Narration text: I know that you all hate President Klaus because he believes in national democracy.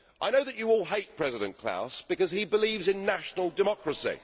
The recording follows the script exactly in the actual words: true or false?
true